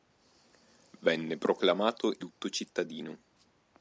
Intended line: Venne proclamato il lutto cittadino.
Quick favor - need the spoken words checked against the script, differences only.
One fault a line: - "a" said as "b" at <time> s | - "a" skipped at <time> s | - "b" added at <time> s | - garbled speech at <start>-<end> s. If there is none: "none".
- "il" skipped at 2.1 s